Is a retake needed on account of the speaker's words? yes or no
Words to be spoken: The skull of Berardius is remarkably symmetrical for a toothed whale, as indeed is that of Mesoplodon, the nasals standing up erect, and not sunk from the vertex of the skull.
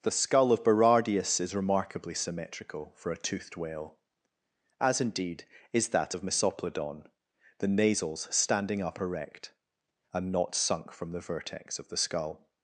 no